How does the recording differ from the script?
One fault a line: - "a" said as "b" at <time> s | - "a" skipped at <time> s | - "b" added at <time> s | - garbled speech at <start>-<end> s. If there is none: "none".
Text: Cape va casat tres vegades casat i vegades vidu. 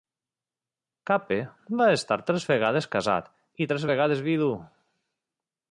- "casat" said as "estar" at 2.0 s
- "tres" added at 3.7 s